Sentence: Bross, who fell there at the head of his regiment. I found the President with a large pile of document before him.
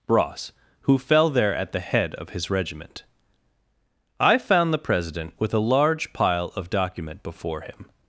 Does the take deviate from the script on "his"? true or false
false